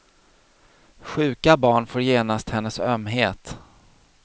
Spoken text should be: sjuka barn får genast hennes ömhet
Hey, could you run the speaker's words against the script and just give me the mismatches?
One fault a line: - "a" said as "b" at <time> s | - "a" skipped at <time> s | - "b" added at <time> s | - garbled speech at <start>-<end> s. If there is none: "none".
none